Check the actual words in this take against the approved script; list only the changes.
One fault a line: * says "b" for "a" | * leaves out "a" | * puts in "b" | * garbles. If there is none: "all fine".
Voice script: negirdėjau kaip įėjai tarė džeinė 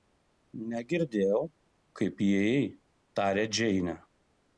all fine